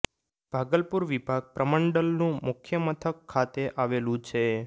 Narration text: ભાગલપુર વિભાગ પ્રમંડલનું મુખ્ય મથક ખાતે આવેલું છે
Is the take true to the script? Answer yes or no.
yes